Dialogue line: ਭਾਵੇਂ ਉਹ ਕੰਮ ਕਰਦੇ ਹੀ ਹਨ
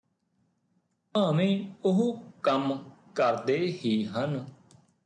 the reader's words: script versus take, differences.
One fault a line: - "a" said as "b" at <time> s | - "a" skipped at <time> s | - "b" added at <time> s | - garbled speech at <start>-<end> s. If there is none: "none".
none